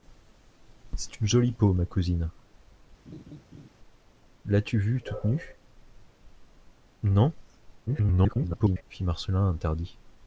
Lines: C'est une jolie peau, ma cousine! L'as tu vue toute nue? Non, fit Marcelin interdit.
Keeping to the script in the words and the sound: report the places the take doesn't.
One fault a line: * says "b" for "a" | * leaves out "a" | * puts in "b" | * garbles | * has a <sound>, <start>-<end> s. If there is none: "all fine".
* has a laugh, 3.1-3.7 s
* garbles